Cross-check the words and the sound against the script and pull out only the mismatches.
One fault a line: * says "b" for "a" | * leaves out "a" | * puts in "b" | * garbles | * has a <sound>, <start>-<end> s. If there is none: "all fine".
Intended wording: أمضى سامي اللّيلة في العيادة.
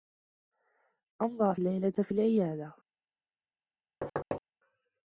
* leaves out "سامي"
* has a thud, 4.0-4.4 s